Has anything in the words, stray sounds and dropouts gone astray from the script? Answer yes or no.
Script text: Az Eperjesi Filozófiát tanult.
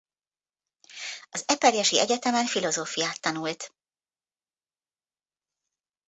yes